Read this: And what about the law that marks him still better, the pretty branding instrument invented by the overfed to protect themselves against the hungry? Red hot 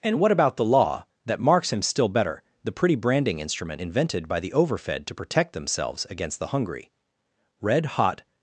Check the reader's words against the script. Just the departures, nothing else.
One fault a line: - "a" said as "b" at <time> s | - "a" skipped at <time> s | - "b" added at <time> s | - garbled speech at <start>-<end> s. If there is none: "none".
none